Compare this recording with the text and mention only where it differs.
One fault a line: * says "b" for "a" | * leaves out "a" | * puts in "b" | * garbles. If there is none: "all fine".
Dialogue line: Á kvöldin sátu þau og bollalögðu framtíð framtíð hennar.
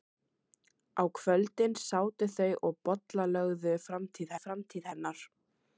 all fine